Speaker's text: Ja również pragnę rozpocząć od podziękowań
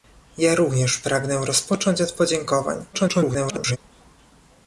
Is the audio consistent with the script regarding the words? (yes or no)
no